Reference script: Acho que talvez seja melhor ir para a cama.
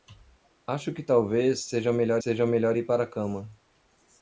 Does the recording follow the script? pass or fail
fail